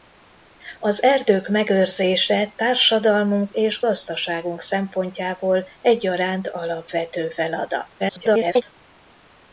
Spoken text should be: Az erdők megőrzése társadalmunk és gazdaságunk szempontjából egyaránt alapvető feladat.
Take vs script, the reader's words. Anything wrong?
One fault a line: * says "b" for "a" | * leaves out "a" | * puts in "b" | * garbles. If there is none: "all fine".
* garbles